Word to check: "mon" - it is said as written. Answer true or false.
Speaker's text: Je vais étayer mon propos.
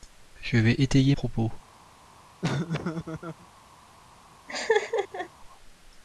false